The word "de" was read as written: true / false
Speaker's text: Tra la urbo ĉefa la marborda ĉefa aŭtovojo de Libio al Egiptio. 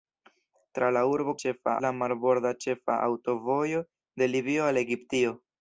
true